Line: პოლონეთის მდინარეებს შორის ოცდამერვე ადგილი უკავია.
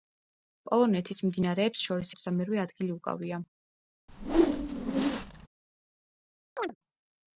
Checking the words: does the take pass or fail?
pass